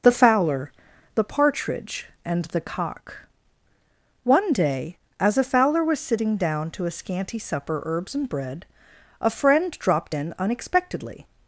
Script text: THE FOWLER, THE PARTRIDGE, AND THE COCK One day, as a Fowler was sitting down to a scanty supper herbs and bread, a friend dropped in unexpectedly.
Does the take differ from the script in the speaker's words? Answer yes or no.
no